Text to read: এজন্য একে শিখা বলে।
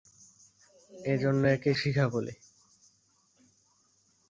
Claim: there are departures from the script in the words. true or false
false